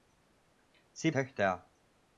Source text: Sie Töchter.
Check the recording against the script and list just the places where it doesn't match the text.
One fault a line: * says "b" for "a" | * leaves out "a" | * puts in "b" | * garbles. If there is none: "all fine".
all fine